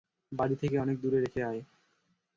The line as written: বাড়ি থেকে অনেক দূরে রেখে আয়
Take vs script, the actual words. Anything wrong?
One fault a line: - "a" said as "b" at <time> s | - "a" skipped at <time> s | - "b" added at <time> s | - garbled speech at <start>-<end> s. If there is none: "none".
none